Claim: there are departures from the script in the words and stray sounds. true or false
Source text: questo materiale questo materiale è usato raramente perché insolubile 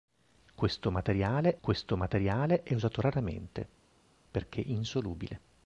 false